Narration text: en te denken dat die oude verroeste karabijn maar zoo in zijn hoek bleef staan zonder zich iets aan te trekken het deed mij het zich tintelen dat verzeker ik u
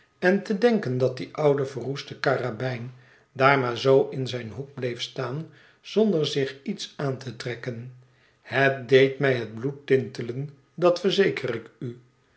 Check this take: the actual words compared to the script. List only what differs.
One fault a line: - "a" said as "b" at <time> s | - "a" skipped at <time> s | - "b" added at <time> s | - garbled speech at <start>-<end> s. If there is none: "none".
- "daar" added at 3.3 s
- "zich" said as "bloed" at 9.6 s